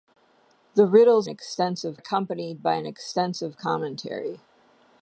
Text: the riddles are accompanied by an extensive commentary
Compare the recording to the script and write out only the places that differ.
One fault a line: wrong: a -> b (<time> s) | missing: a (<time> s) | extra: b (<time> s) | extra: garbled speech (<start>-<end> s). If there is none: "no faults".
wrong: are -> extensive (1.3 s)